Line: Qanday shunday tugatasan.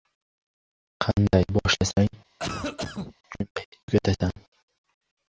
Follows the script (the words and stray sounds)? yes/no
no